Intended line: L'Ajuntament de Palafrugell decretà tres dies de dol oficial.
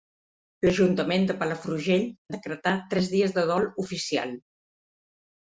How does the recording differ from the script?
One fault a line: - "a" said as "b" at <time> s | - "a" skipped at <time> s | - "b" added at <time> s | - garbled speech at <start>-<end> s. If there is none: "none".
none